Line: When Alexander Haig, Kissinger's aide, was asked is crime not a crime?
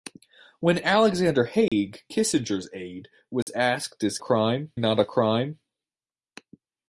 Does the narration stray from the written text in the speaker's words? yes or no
no